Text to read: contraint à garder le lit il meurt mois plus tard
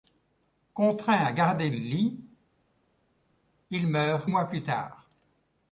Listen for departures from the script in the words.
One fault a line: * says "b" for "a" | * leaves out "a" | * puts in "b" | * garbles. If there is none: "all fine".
all fine